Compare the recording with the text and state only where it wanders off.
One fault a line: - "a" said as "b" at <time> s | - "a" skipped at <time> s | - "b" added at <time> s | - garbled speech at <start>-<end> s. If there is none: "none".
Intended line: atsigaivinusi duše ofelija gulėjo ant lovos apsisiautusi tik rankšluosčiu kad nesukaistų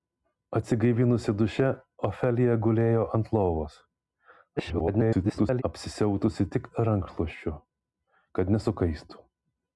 - garbled speech at 4.6-5.6 s